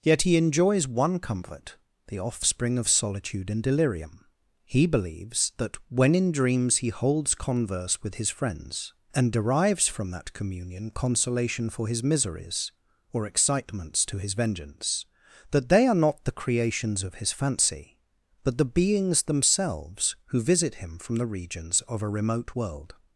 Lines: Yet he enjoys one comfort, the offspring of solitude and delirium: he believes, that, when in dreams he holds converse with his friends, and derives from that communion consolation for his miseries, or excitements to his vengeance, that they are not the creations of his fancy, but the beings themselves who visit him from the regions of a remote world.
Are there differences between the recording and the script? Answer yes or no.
no